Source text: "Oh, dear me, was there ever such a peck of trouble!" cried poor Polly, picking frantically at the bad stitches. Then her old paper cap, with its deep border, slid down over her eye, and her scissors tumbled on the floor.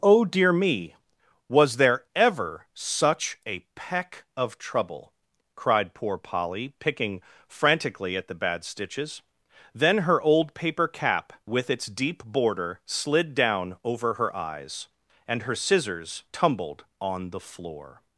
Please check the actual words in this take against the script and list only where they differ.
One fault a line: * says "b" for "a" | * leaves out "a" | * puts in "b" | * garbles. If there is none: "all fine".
* says "eyes" for "eye"